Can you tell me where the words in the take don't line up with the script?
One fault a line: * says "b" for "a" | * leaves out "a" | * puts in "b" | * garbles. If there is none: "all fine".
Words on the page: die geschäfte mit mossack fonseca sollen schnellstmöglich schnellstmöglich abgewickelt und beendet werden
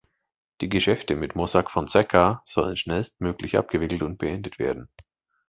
* leaves out "schnellstmöglich"